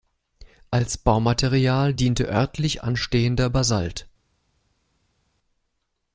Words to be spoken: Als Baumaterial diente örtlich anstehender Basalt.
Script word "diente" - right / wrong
right